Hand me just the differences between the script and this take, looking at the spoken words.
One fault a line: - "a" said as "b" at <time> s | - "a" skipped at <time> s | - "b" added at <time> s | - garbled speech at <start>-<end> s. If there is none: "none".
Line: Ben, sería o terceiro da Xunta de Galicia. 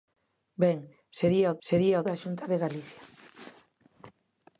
- "terceiro" said as "sería" at 1.7 s